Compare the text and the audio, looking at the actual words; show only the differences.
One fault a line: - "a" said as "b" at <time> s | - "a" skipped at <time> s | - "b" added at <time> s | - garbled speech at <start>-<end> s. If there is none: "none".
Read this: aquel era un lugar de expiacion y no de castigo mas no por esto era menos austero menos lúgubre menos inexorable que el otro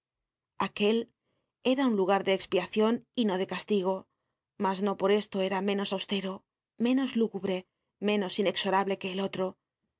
none